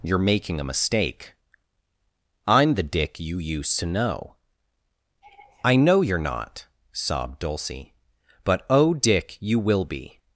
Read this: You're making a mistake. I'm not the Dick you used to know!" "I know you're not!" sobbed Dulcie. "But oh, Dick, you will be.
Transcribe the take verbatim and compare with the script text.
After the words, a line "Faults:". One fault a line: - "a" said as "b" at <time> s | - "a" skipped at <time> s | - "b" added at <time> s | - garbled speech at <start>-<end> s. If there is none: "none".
You're making a mistake. I'm the Dick you used to know!" "I know you're not!" sobbed Dulcie. "But oh, Dick, you will be.
Faults:
- "not" skipped at 2.8 s